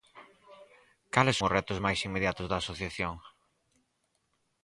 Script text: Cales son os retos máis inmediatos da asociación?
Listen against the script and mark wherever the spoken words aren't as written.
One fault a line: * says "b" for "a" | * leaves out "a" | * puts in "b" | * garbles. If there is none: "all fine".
* leaves out "son"